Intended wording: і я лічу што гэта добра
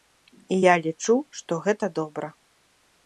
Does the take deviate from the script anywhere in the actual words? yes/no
no